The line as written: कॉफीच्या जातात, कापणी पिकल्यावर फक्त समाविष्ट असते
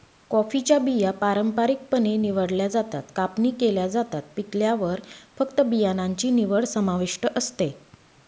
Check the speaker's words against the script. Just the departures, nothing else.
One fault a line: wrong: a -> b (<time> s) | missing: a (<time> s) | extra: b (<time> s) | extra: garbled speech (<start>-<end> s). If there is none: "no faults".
extra: बिया पारंपारिकपणे निवडल्या (0.8 s)
extra: केल्या जातात (3.5 s)
extra: बियाणांची निवड (5.6 s)